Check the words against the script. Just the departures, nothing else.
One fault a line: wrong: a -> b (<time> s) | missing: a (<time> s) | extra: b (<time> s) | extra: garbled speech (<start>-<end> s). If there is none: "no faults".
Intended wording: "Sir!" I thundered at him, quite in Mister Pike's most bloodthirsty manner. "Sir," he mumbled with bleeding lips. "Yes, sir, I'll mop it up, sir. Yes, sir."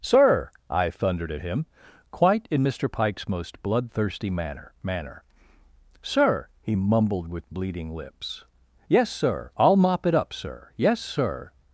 extra: manner (4.8 s)